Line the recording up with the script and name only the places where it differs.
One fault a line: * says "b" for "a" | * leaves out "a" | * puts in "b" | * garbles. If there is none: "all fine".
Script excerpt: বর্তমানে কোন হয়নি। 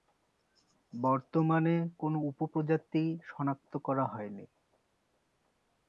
* puts in "উপপ্রজাতি শনাক্ত করা"